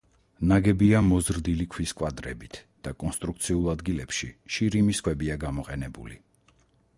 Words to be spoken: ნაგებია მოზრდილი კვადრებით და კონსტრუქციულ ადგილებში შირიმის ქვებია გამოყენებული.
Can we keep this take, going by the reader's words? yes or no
no